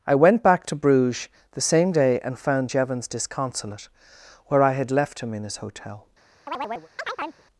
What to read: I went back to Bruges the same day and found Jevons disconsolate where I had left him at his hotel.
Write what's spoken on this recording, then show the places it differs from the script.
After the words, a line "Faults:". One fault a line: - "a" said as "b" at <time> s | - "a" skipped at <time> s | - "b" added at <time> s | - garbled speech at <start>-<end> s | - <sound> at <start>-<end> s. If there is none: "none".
I went back to Bruges the same day and found Jevons disconsolate where I had left him in his hotel.
Faults:
- "at" said as "in" at 5.3 s
- chirp at 6.5-7.4 s